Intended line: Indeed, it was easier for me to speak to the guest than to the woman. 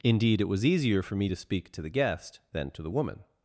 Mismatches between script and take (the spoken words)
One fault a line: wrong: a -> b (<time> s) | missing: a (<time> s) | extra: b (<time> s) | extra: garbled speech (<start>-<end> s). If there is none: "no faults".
no faults